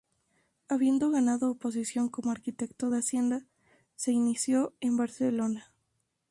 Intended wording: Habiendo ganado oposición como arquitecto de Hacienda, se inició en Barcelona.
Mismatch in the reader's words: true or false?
false